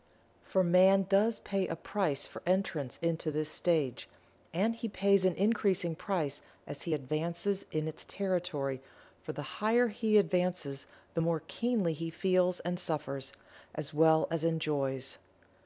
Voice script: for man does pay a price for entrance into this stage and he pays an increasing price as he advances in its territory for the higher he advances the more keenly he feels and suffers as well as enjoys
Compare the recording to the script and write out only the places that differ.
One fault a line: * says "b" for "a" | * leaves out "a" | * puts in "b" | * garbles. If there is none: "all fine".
all fine